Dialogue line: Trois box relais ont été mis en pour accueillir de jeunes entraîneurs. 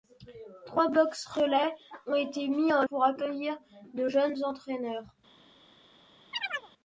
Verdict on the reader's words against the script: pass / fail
pass